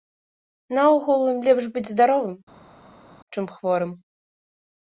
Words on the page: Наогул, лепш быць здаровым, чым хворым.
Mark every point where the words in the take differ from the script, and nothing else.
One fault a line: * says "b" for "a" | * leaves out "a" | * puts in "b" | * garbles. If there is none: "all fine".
all fine